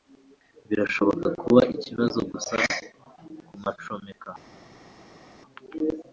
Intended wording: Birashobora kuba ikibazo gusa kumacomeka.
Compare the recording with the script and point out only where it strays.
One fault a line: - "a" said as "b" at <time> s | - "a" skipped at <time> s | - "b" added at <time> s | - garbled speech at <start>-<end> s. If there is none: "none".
none